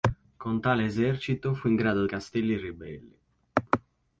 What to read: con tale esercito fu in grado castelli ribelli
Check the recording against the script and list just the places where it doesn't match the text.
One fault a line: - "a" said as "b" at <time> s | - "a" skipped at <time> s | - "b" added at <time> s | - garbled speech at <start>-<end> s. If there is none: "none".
none